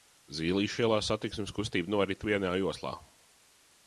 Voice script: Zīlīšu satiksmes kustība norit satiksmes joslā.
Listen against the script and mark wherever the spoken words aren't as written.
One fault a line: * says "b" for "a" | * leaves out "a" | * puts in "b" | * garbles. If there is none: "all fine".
* puts in "ielā"
* says "vienā" for "satiksmes"